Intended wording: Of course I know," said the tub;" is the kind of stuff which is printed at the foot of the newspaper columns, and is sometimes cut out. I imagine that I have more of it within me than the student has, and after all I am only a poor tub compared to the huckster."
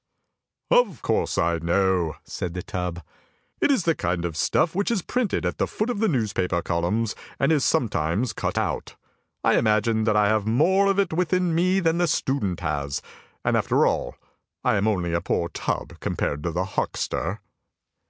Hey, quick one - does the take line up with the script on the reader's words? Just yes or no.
no